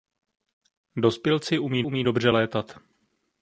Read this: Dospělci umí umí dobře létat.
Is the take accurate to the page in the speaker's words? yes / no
yes